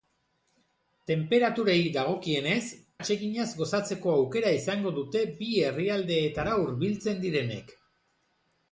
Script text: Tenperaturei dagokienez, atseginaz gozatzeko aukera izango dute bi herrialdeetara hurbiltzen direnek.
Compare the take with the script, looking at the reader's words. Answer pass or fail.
pass